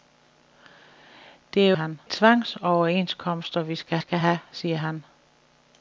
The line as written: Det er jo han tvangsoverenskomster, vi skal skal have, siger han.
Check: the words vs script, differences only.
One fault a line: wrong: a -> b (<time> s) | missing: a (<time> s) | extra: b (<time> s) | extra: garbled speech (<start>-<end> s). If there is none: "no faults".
no faults